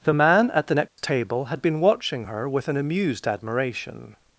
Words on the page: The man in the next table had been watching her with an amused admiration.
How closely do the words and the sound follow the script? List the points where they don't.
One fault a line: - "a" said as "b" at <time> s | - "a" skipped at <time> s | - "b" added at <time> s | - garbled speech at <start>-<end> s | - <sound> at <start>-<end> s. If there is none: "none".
- "in" said as "at" at 0.5 s
- dropout at 0.9-1.0 s